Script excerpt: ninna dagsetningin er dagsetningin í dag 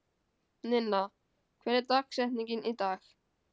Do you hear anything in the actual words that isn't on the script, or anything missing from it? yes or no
yes